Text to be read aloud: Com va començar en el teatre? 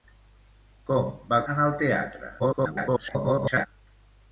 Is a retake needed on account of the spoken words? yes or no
yes